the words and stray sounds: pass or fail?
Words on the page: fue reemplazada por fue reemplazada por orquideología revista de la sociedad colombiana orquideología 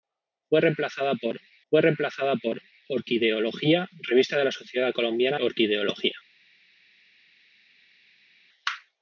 pass